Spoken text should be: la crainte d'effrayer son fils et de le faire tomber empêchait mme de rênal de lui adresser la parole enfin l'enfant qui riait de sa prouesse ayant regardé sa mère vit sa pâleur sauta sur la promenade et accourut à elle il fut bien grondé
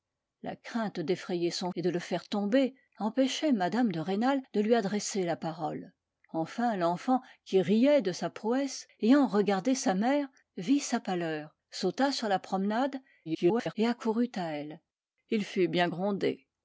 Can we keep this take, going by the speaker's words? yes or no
no